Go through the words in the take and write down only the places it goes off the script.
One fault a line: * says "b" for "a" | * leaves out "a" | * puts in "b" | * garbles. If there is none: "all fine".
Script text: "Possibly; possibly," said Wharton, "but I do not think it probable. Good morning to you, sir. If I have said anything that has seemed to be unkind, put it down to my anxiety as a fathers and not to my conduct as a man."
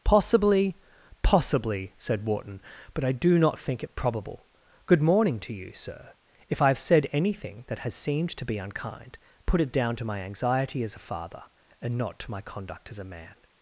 * says "father" for "fathers"